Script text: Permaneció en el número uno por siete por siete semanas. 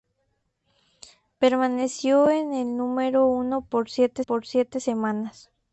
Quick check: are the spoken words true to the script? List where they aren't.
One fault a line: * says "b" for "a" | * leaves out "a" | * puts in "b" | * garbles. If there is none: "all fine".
all fine